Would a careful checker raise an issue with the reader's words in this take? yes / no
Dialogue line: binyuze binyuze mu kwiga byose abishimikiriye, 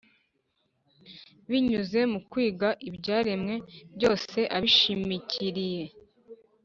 yes